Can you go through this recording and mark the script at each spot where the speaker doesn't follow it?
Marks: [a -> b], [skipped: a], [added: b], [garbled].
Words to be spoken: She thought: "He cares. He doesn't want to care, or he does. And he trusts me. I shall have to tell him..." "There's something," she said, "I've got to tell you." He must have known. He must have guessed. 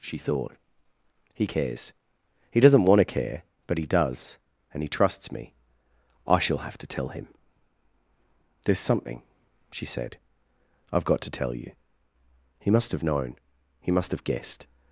She thought: "He cares. He doesn't want to care, [or -> but] he does. And he trusts me. I shall have to tell him..." "There's something," she said, "I've got to tell you." He must have known. He must have guessed.